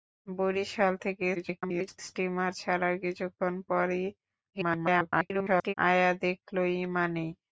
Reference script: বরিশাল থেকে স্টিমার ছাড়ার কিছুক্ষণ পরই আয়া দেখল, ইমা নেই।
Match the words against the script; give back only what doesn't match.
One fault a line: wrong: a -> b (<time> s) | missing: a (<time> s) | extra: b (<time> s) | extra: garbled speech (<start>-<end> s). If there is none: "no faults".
extra: garbled speech (1.3-2.0 s)
extra: garbled speech (4.5-5.7 s)